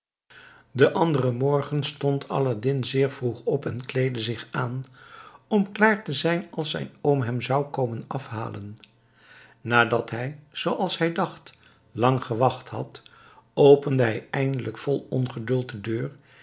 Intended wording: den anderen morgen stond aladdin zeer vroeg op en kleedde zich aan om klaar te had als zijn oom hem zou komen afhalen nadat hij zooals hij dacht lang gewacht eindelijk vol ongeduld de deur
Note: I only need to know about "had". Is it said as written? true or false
false